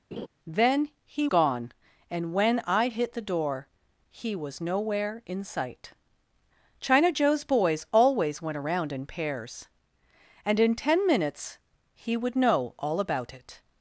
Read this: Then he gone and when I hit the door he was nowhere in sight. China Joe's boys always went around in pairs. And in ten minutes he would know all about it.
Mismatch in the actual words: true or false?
false